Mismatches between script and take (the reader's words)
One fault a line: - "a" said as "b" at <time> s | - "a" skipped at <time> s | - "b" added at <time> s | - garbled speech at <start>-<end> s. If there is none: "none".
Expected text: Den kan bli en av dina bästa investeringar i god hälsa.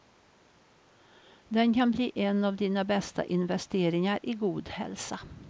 none